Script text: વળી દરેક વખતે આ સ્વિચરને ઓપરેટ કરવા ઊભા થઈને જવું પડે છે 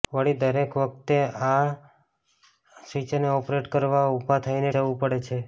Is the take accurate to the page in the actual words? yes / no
yes